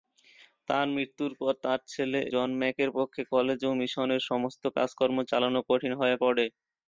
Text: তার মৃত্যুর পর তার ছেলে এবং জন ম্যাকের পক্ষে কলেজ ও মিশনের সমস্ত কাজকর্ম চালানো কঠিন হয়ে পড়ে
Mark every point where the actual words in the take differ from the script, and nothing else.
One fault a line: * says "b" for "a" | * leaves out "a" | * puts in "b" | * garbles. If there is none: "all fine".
* leaves out "এবং"